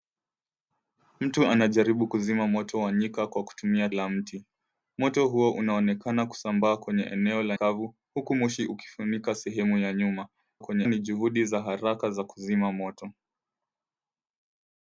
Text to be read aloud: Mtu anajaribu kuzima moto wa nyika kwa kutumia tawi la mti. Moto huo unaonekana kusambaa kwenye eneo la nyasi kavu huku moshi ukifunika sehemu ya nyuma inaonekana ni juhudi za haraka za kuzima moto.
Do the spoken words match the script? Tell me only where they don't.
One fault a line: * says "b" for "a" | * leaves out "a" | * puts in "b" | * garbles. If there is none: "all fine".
* leaves out "tawi"
* leaves out "nyasi"
* says "kwenye" for "inaonekana"